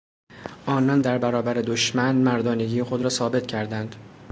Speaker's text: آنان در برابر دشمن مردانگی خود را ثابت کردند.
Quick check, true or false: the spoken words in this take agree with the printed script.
true